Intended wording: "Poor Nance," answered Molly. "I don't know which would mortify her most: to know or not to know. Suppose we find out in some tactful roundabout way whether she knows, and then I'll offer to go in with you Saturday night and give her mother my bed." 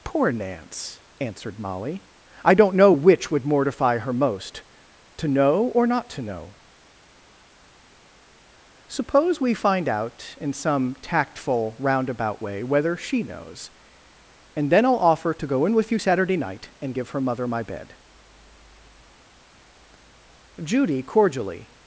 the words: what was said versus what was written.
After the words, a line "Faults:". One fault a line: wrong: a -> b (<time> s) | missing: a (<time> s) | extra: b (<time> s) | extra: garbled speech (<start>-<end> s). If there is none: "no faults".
"Poor Nance," answered Molly. "I don't know which would mortify her most: to know or not to know. Suppose we find out in some tactful roundabout way whether she knows, and then I'll offer to go in with you Saturday night and give her mother my bed." Judy cordially
Faults:
extra: Judy cordially (20.6 s)